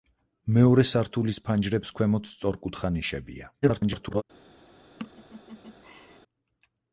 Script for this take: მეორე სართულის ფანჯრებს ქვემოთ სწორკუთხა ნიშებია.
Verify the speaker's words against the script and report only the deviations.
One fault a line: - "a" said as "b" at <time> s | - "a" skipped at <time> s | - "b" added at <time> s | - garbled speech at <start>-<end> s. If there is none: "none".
- garbled speech at 3.6-4.2 s